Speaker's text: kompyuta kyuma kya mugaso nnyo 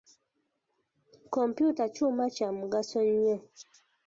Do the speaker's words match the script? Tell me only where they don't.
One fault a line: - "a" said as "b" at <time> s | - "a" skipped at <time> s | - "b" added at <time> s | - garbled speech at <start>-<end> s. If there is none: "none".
none